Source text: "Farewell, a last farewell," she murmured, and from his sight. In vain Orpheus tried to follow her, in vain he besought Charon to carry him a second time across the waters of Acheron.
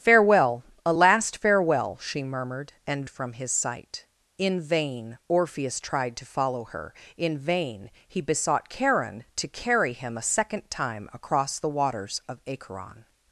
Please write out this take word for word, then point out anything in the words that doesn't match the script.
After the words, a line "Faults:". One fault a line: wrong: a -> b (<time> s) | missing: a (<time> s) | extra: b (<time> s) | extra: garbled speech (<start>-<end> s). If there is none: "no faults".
"Farewell, a last farewell," she murmured, and from his sight. In vain Orpheus tried to follow her, in vain he besought Charon to carry him a second time across the waters of Acheron.
Faults:
no faults